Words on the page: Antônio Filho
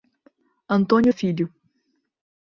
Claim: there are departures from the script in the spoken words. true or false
false